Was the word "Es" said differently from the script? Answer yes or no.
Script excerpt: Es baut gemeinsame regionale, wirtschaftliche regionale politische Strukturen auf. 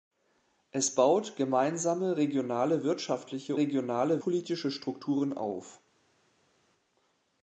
no